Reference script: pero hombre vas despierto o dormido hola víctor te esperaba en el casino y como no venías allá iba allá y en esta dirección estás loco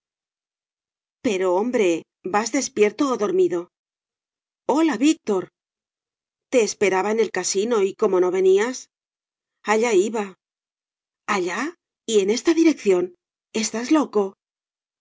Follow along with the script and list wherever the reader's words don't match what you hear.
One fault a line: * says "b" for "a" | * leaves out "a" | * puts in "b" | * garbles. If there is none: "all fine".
all fine